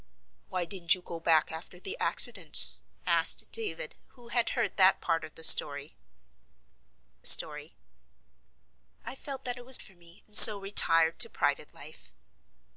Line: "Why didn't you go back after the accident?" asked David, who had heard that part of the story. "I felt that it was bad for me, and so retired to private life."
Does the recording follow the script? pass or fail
fail